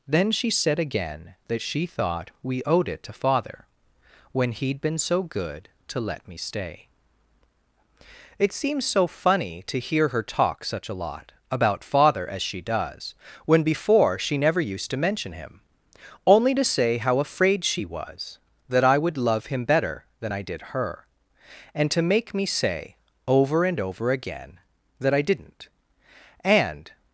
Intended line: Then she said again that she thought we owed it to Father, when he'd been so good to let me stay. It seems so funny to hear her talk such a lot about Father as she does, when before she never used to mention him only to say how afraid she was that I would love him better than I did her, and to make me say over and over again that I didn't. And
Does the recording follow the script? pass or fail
pass